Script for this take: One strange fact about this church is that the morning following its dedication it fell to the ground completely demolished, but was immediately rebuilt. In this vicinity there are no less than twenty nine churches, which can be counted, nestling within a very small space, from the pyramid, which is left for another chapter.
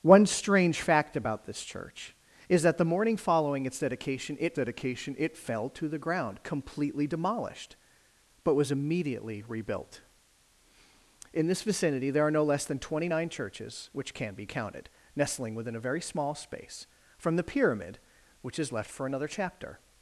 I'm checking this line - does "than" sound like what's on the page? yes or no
yes